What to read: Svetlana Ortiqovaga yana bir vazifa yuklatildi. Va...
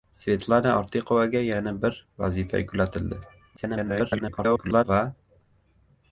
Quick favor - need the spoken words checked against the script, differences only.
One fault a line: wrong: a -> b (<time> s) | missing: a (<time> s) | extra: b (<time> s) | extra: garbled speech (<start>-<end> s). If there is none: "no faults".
extra: garbled speech (3.6-4.8 s)